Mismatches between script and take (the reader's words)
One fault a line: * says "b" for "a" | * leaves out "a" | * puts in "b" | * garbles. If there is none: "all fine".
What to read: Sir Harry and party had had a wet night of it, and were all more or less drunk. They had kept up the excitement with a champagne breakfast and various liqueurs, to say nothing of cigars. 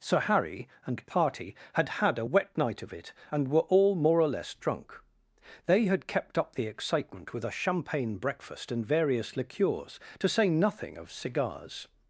all fine